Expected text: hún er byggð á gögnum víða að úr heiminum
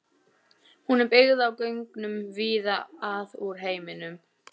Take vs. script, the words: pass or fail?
pass